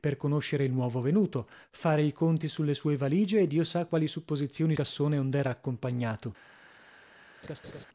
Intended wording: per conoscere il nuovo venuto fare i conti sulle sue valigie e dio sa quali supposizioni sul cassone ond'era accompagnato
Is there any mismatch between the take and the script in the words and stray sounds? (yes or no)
yes